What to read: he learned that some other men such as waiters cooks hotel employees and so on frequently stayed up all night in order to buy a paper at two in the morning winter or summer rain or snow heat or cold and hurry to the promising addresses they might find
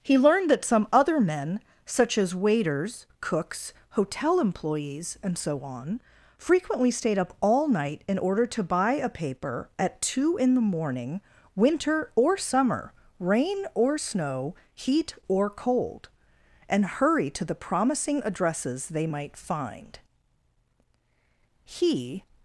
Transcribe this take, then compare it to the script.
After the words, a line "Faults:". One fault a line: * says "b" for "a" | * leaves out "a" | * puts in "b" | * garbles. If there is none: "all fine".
he learned that some other men such as waiters cooks hotel employees and so on frequently stayed up all night in order to buy a paper at two in the morning winter or summer rain or snow heat or cold and hurry to the promising addresses they might find he
Faults:
* puts in "he"